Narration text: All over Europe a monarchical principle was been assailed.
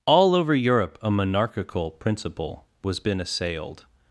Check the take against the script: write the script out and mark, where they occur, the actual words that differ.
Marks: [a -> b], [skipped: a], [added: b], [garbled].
All over Europe a monarchical principle was been assailed.